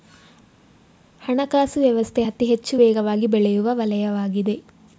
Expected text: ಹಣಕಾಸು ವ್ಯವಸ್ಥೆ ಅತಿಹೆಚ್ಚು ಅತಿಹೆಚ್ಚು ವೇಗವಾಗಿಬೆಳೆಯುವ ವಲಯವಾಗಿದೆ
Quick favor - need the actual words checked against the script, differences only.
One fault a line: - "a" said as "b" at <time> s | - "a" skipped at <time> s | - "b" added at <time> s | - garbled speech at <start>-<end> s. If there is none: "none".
- "ಅತಿಹೆಚ್ಚು" skipped at 2.8 s